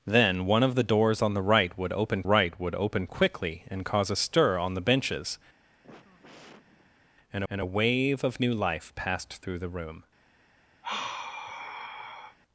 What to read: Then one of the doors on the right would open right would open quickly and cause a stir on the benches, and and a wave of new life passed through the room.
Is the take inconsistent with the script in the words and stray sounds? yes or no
yes